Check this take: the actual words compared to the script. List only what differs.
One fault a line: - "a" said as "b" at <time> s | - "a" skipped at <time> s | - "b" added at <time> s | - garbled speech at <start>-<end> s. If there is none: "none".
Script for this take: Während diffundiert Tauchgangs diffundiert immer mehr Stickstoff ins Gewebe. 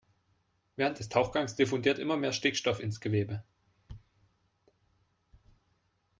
- "diffundiert" said as "des" at 1.0 s